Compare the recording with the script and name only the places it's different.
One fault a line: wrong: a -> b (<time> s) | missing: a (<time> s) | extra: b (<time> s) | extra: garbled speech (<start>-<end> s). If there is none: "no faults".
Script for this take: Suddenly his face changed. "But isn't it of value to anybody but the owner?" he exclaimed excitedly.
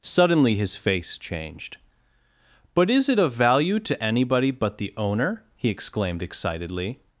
wrong: isn't -> is (2.9 s)